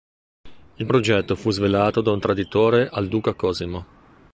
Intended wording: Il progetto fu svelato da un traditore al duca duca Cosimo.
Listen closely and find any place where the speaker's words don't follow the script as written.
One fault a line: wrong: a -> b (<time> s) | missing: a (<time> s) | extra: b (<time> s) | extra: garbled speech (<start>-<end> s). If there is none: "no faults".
missing: duca (3.3 s)